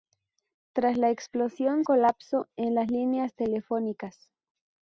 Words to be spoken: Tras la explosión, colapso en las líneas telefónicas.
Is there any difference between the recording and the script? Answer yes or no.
no